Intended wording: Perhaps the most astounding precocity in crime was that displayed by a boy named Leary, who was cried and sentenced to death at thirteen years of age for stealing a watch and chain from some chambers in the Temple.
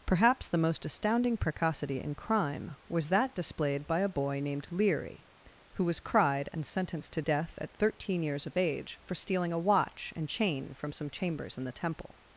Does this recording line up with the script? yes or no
yes